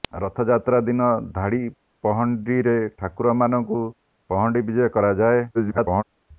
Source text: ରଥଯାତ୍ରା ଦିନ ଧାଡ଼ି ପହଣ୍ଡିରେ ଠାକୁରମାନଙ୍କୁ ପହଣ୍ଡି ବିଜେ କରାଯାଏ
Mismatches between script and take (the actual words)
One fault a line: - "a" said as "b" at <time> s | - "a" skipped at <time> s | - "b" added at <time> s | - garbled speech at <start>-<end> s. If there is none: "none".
- garbled speech at 5.5-6.0 s